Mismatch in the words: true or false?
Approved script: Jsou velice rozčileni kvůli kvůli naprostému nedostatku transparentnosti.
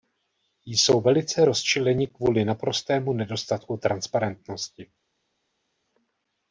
true